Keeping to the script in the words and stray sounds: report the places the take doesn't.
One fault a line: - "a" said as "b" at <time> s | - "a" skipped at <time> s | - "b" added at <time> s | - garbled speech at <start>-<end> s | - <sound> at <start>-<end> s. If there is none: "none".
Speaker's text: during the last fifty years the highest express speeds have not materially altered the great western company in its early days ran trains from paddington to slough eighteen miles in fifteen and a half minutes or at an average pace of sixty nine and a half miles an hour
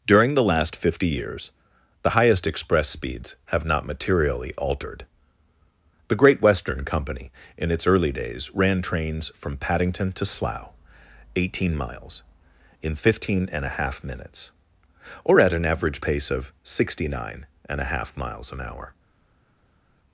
none